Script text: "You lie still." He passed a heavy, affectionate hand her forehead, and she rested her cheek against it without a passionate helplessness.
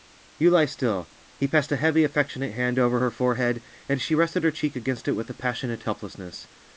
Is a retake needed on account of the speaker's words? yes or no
yes